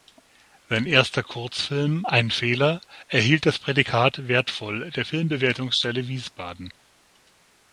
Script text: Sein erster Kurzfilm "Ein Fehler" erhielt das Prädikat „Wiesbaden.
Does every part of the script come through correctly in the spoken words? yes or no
no